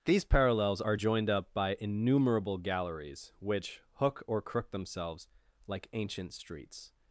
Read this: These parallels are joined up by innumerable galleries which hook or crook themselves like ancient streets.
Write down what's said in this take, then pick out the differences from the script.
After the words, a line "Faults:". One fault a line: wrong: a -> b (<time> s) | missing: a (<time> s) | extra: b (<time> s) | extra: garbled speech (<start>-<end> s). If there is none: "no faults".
These parallels are joined up by innumerable galleries which hook or crook themselves like ancient streets.
Faults:
no faults